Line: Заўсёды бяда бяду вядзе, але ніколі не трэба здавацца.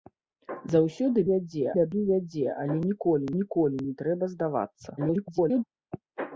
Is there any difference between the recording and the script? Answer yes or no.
yes